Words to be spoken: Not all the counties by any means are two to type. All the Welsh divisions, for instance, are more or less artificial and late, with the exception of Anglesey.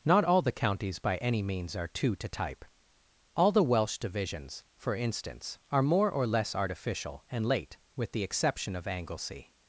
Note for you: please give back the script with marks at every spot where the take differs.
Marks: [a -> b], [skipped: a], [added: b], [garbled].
Not all the counties by any means are two to type. All the Welsh divisions, for instance, are more or less artificial and late, with the exception of Anglesey.